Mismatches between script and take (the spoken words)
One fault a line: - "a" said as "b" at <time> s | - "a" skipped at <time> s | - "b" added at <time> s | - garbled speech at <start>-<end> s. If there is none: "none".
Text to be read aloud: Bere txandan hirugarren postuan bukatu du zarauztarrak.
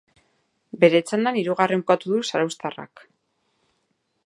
- "postuan" skipped at 1.9 s